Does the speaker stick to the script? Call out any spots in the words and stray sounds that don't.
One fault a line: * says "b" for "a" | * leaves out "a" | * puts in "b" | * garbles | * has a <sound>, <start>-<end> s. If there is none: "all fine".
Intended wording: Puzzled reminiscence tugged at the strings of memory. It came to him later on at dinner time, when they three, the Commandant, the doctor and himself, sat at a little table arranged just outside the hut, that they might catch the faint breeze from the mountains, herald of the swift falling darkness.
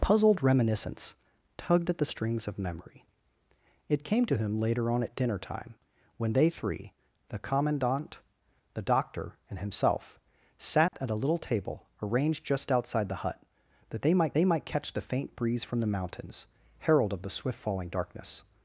* has a dropout, 10.9-10.9 s
* puts in "they might"